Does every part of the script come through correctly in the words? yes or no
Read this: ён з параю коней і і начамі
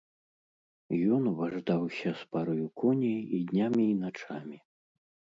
no